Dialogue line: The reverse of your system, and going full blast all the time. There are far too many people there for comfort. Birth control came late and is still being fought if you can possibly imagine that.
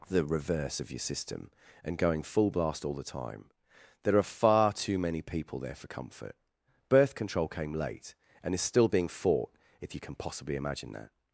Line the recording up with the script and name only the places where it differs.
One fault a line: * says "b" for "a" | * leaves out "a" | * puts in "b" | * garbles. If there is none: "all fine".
all fine